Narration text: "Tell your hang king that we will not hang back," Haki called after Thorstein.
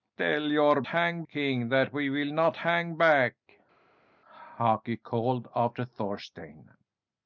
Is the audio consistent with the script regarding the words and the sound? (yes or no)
yes